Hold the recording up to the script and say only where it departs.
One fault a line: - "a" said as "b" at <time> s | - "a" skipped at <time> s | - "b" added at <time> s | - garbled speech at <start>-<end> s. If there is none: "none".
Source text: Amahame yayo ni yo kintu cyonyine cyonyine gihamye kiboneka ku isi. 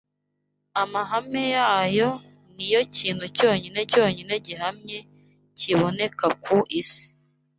none